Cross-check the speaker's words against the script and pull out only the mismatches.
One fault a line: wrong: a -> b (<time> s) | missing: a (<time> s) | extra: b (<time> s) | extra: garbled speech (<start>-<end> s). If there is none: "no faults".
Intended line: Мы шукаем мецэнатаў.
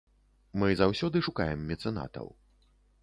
extra: заўсёды (0.8 s)